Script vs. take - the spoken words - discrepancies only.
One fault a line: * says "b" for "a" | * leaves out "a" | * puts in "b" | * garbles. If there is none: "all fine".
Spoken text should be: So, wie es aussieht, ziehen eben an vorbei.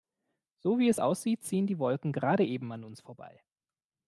* puts in "die Wolken gerade"
* puts in "uns"